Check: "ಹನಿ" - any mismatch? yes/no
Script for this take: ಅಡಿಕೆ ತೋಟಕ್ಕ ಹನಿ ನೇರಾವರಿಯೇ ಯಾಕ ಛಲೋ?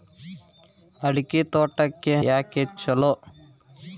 yes